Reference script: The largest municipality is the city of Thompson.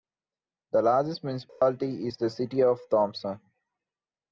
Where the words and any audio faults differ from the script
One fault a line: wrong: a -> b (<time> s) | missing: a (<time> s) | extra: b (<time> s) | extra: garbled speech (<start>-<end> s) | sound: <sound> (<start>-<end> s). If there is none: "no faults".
sound: dropout (1.5-1.6 s)